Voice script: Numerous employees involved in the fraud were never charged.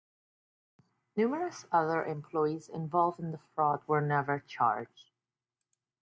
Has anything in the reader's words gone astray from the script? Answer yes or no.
yes